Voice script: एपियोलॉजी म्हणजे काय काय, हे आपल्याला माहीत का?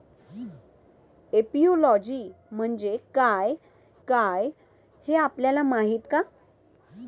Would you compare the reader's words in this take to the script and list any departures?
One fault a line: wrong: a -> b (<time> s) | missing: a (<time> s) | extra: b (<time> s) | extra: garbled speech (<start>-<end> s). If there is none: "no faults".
no faults